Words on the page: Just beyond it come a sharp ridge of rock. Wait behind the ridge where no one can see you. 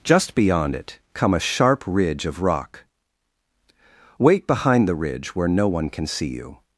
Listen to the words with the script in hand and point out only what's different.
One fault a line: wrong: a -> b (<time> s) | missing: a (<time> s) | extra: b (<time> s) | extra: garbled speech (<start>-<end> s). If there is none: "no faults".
no faults